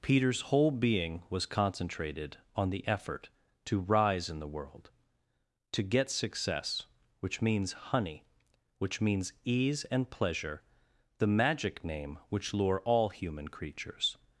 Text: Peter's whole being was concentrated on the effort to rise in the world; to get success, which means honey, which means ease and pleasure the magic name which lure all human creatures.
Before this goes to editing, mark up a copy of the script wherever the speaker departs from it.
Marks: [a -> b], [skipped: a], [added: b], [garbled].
Peter's whole being was concentrated on the effort to rise in the world; to get success, which means honey, which means ease and pleasure the magic name which lure all human creatures.